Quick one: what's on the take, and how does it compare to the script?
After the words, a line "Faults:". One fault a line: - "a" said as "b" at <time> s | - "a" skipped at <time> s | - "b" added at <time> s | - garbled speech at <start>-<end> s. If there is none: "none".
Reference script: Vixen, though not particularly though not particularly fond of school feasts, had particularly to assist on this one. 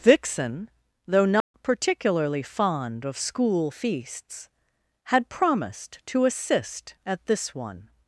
Vixen, though not particularly fond of school feasts, had promised to assist at this one.
Faults:
- "though not particularly" skipped at 2.4 s
- "particularly" said as "promised" at 5.3 s
- "on" said as "at" at 7.0 s